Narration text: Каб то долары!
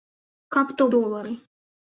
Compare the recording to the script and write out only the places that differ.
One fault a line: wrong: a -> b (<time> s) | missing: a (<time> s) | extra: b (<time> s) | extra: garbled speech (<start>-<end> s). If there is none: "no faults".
no faults